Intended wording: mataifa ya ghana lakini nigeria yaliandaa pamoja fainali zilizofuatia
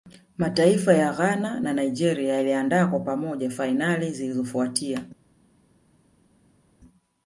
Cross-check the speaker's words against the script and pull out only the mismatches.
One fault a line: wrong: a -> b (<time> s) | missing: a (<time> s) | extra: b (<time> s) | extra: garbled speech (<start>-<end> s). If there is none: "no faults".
wrong: lakini -> na (1.6 s)
extra: kwa (2.9 s)